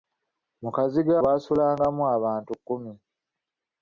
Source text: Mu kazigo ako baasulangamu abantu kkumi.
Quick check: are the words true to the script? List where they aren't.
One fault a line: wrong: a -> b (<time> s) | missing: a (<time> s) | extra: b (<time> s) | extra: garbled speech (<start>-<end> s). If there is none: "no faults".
missing: ako (1.1 s)